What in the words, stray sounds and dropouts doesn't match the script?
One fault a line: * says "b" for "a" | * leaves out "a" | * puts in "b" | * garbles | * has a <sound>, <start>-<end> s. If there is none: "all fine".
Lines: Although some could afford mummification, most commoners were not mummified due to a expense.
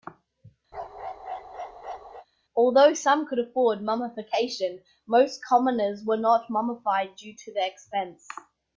* has a bark, 0.7-2.3 s
* says "the" for "a"